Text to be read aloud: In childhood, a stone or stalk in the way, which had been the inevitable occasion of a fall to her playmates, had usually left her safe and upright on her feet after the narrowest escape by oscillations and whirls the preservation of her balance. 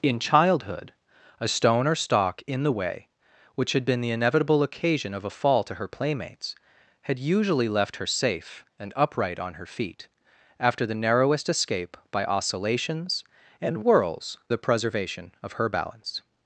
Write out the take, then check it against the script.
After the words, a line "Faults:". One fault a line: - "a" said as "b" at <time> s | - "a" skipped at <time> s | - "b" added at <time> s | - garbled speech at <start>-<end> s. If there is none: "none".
In childhood, a stone or stalk in the way, which had been the inevitable occasion of a fall to her playmates, had usually left her safe and upright on her feet after the narrowest escape by oscillations and whirls the preservation of her balance.
Faults:
none